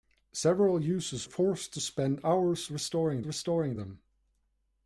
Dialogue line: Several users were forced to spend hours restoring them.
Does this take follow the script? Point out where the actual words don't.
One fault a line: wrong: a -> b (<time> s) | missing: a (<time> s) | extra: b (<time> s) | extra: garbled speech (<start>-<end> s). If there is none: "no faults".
missing: were (1.3 s)
extra: restoring (3.2 s)